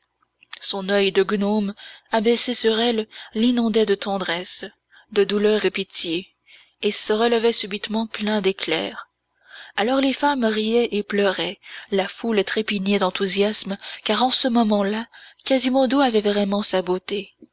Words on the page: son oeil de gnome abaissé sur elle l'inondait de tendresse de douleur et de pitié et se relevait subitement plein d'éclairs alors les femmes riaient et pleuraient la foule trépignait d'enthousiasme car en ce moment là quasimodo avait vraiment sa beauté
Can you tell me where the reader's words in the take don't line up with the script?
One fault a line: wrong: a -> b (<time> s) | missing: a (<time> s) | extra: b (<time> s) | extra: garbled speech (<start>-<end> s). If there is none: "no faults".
missing: et (5.6 s)